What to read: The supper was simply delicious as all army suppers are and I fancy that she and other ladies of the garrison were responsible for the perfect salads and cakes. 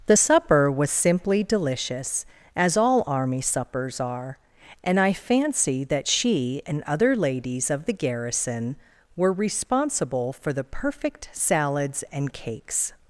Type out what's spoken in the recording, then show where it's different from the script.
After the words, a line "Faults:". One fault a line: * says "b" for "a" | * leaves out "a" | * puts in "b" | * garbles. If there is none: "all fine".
The supper was simply delicious as all army suppers are and I fancy that she and other ladies of the garrison were responsible for the perfect salads and cakes.
Faults:
all fine